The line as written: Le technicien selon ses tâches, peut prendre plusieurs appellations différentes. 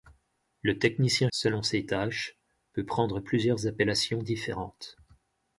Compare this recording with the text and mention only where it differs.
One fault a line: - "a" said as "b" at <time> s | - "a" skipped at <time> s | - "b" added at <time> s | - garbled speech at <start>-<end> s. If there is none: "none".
none